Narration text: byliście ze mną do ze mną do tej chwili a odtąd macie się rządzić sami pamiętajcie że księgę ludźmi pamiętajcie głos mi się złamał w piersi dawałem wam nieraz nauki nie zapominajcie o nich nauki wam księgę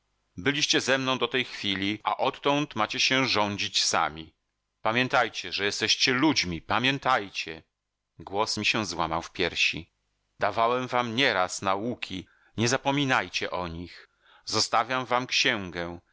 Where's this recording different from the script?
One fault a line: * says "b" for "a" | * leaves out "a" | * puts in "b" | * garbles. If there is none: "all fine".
* leaves out "ze mną do"
* says "jesteście" for "księgę"
* says "zostawiam" for "nauki"